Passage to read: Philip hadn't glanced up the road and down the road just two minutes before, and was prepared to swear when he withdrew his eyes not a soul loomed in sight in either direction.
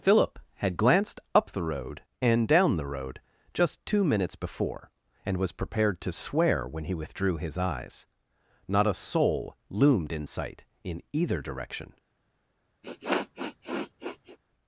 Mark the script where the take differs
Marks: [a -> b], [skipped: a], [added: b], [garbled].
Philip [hadn't -> had] glanced up the road and down the road just two minutes before, and was prepared to swear when he withdrew his eyes not a soul loomed in sight in either direction.